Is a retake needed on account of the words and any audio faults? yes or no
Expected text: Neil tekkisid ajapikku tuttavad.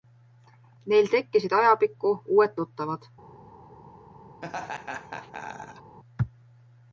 yes